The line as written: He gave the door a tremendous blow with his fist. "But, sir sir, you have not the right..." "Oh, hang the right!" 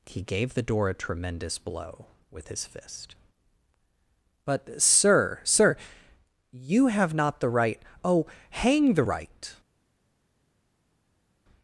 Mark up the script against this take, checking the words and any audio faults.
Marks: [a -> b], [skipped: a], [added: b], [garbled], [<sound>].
He gave the door a tremendous blow with his fist. "But, sir sir, you have not the right..." "Oh, hang the right!"